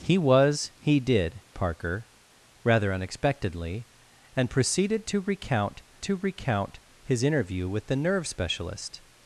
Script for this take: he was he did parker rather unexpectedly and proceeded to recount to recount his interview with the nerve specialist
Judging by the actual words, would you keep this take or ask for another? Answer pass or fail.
pass